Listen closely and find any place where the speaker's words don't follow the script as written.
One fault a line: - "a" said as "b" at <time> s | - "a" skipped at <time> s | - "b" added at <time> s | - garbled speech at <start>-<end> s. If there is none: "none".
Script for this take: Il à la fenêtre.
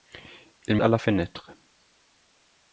none